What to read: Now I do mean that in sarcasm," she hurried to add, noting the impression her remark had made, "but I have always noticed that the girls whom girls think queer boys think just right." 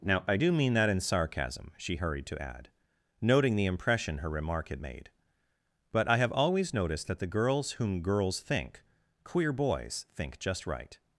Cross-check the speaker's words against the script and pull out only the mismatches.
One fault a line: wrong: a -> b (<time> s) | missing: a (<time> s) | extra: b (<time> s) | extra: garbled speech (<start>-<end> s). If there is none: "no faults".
no faults